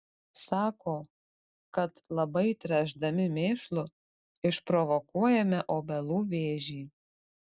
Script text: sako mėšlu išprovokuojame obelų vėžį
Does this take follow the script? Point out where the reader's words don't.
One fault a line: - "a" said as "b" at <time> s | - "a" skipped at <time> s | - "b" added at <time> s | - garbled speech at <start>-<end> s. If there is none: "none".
- "kad labai tręšdami" added at 1.8 s